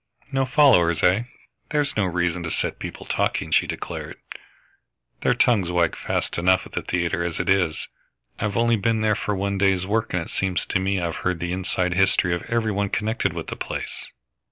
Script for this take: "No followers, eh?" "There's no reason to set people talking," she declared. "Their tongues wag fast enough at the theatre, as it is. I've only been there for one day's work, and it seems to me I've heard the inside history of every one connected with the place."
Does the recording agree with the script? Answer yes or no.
yes